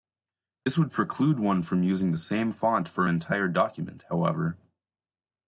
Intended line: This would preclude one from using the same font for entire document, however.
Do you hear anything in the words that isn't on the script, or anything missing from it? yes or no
no